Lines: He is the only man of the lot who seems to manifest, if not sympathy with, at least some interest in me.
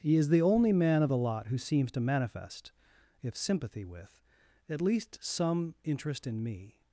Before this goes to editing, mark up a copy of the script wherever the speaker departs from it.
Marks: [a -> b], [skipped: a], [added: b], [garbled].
He is the only man of the lot who seems to manifest, if [skipped: not] sympathy with, at least some interest in me.